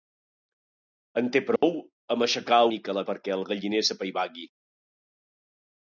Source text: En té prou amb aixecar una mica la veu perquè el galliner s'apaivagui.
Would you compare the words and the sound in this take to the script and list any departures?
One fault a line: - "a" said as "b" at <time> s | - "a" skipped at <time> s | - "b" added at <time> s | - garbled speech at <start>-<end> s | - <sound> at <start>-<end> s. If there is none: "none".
- dropout at 1.6-1.6 s
- "una" skipped at 2.6 s
- "veu" skipped at 3.1 s